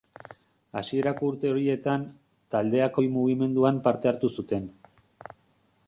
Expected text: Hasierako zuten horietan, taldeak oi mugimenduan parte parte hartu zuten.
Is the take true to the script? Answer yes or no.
no